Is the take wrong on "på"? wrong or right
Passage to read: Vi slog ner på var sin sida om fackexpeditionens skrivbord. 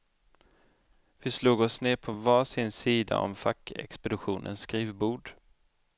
right